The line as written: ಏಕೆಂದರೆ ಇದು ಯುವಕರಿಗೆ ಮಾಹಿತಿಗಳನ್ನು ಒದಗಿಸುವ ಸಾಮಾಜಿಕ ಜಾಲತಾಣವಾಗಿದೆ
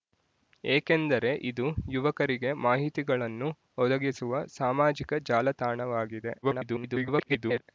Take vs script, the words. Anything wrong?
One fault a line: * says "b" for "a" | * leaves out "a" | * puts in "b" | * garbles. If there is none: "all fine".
* garbles